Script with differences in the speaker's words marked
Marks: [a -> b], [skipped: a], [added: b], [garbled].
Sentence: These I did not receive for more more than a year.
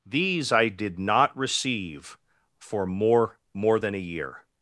These I did not receive for more more than a year.